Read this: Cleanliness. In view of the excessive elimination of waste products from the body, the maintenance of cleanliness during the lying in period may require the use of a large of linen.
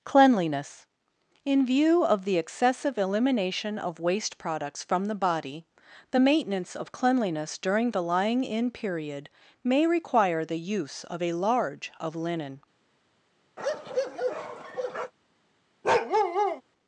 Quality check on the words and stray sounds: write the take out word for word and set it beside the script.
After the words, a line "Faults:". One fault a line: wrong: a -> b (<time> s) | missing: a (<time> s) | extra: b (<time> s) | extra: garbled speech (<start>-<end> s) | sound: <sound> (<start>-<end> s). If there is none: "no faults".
Cleanliness. In view of the excessive elimination of waste products from the body, the maintenance of cleanliness during the lying in period may require the use of a large of linen.
Faults:
sound: bark (13.6-15.1 s)
sound: bark (15.8-16.6 s)